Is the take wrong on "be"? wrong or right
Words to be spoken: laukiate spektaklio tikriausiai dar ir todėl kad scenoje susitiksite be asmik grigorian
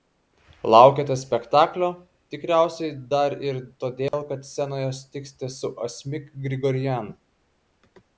wrong